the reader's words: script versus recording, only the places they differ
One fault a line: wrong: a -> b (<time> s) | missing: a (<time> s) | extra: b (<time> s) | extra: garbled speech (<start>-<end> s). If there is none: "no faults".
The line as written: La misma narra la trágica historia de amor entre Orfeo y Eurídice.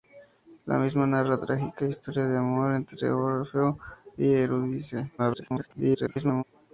extra: garbled speech (5.2-6.4 s)